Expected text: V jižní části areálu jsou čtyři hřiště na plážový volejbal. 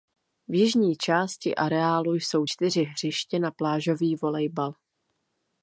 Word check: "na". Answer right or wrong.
right